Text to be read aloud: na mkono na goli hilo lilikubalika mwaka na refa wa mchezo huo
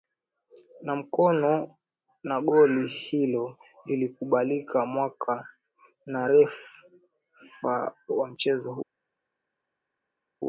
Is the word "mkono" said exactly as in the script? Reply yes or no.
yes